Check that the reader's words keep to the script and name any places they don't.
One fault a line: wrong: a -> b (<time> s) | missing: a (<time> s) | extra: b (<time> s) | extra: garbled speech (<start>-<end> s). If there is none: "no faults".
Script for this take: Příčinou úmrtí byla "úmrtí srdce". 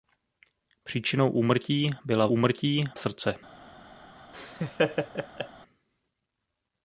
no faults